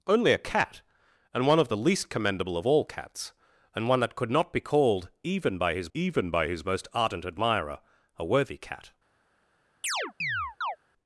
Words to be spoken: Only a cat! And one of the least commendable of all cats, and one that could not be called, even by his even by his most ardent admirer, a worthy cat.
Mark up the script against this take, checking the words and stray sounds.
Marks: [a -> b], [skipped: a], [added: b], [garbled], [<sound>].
Only a cat! And one of the least commendable of all cats, and one that could not be called, even by his even by his most ardent admirer, a worthy cat. [chirp]